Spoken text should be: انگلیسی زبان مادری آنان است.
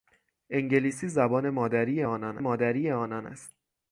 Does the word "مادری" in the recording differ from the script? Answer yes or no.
no